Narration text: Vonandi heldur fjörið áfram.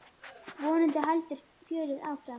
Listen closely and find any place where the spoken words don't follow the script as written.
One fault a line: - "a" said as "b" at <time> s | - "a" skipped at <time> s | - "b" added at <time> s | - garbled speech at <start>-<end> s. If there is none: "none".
none